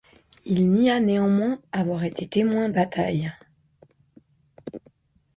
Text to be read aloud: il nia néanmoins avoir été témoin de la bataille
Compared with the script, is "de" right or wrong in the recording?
wrong